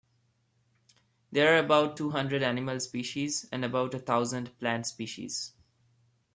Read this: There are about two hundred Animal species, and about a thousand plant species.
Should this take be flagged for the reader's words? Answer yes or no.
no